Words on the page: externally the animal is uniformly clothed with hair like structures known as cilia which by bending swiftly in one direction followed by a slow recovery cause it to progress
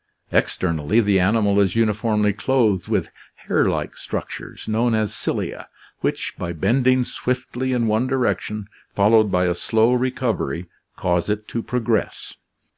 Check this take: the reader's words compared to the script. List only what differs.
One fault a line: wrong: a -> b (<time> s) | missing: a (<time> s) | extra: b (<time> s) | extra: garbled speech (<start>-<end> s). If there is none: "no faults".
no faults